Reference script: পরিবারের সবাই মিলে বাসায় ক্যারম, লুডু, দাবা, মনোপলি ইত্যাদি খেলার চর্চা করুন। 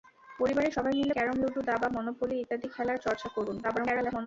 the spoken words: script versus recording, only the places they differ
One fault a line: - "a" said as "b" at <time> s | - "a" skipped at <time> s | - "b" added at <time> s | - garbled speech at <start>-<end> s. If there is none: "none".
- "বাসায়" skipped at 1.2 s
- garbled speech at 3.6-4.3 s